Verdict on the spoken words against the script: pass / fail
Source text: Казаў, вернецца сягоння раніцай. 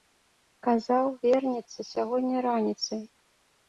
pass